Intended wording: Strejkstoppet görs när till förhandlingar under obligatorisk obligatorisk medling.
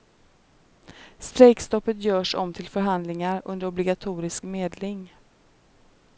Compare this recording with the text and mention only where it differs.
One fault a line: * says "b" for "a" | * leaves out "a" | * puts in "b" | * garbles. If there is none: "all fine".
* says "om" for "när"
* leaves out "obligatorisk"